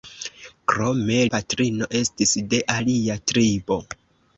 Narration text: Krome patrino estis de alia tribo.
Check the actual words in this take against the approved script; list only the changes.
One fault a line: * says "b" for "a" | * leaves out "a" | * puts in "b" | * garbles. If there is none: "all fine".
all fine